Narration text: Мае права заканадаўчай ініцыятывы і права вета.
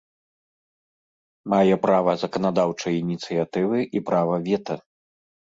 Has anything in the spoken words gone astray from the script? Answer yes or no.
no